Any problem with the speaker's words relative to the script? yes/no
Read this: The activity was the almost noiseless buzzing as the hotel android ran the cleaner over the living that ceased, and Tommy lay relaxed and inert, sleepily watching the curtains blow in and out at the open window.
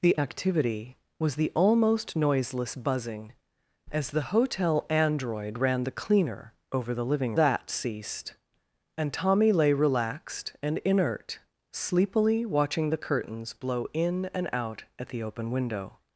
no